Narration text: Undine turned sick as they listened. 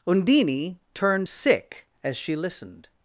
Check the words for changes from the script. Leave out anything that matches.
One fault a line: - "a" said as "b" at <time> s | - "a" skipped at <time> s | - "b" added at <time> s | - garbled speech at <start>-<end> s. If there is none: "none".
- "they" said as "she" at 2.2 s